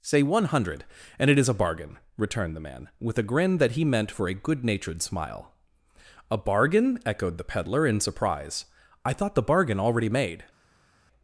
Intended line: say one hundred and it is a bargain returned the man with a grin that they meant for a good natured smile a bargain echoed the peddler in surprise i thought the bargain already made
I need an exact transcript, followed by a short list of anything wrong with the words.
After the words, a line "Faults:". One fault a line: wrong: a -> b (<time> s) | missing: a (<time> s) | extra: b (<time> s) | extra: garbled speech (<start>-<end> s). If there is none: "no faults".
say one hundred and it is a bargain returned the man with a grin that he meant for a good natured smile a bargain echoed the peddler in surprise i thought the bargain already made
Faults:
wrong: they -> he (3.7 s)